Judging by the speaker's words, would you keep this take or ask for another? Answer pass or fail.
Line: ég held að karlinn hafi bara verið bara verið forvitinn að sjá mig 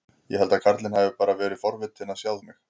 fail